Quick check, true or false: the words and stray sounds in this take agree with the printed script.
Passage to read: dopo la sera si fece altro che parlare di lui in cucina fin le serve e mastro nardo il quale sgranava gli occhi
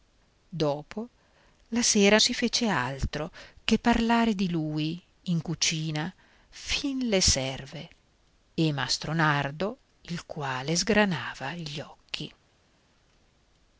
true